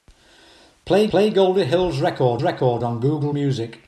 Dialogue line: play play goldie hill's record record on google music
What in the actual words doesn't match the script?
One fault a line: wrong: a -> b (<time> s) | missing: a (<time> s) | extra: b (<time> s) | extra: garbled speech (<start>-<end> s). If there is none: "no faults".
no faults